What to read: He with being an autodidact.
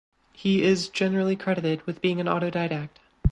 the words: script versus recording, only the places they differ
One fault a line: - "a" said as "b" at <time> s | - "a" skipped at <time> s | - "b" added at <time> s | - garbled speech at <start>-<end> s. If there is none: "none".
- "is generally credited" added at 0.6 s